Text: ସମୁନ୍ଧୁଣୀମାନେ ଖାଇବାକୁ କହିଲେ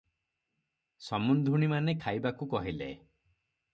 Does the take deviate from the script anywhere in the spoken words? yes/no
no